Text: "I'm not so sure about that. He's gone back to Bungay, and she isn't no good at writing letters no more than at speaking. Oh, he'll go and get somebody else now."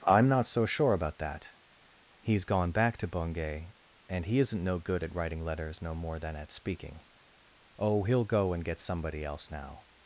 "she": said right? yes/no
no